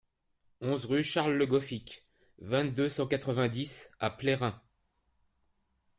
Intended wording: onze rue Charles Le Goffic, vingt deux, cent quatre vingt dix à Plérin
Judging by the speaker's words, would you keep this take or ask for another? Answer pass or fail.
pass